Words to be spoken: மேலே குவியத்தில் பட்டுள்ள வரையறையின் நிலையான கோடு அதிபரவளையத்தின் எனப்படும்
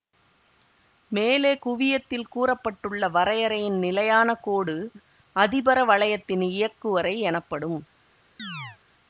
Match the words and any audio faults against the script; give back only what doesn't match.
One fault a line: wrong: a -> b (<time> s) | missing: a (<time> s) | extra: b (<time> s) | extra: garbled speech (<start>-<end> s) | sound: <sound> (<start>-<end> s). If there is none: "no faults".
extra: கூற (2.3 s)
extra: இயக்குவரை (6.5 s)
sound: chirp (8.4-8.8 s)